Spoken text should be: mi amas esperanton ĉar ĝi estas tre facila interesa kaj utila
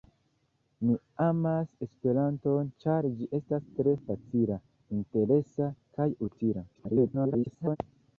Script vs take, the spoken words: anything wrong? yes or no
yes